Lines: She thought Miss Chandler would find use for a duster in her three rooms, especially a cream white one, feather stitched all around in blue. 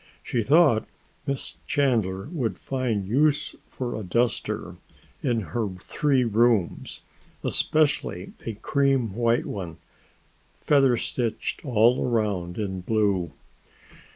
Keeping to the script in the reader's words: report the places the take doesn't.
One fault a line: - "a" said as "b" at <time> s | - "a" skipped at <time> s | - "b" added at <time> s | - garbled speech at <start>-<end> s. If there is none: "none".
none